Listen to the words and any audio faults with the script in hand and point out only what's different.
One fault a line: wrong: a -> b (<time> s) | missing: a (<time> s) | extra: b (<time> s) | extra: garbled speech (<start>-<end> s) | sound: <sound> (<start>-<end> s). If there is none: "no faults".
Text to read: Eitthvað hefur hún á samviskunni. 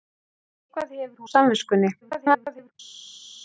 missing: hún (1.2 s)
extra: garbled speech (2.0-2.7 s)